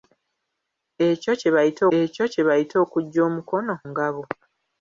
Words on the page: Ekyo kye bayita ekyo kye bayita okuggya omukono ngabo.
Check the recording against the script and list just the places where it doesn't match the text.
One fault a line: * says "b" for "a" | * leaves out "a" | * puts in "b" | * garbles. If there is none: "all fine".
all fine